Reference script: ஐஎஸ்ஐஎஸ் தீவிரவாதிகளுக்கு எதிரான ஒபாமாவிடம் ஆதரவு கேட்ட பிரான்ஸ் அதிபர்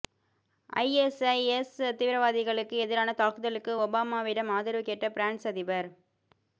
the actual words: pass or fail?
fail